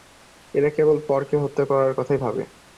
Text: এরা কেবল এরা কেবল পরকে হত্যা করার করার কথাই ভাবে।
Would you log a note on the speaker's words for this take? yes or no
yes